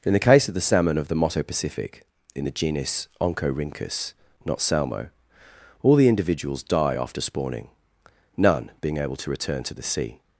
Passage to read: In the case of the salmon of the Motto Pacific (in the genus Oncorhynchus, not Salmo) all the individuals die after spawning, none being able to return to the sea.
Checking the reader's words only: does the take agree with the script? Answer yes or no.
yes